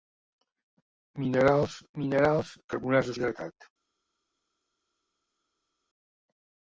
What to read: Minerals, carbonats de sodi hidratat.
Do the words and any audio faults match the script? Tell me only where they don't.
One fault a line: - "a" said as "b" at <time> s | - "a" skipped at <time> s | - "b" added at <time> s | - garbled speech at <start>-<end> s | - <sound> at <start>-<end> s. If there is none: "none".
- "minerals" added at 2.0 s
- "sodi" skipped at 3.2 s